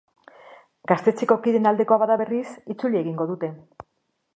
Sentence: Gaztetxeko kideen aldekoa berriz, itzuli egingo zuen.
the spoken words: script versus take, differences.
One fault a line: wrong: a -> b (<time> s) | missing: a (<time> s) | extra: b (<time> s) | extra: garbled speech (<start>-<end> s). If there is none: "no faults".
extra: bada (2.0 s)
wrong: zuen -> dute (3.3 s)